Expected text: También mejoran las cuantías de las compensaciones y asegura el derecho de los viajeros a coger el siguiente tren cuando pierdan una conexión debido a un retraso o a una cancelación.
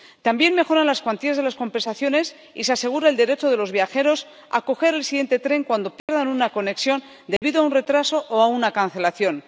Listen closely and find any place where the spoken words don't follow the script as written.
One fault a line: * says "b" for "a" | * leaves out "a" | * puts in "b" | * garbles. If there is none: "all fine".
* puts in "se"